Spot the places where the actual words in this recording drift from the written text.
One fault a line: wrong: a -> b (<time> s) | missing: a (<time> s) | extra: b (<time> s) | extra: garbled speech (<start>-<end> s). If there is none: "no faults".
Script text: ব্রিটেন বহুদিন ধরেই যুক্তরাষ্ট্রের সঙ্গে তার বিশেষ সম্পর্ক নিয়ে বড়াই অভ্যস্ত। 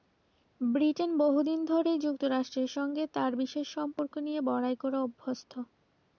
extra: করে (4.8 s)